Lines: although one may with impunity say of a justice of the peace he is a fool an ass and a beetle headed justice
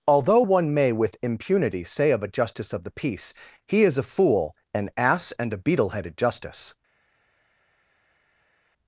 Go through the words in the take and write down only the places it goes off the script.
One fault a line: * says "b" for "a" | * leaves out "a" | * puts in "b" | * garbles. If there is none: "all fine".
all fine